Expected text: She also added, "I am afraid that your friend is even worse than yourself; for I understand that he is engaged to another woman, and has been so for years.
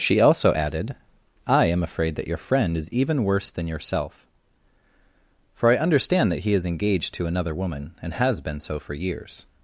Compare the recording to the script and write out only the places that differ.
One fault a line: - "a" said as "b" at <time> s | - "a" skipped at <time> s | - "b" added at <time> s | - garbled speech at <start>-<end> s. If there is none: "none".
none